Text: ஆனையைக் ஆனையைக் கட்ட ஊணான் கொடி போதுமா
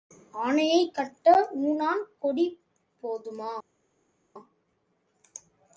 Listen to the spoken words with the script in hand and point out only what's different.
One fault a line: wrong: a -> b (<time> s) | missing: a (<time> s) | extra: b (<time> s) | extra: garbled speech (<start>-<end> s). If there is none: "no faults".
missing: ஆனையைக் (0.9 s)